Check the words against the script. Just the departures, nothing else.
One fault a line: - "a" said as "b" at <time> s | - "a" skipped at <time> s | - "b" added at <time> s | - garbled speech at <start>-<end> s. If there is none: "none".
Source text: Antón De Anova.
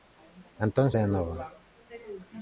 none